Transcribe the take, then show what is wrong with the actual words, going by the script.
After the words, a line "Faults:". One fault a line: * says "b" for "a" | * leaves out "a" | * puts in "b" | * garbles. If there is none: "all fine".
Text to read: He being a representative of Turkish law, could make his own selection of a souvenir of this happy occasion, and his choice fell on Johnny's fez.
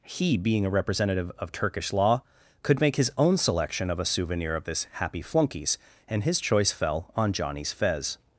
He being a representative of Turkish law, could make his own selection of a souvenir of this happy flunkies, and his choice fell on Johnny's fez.
Faults:
* says "flunkies" for "occasion"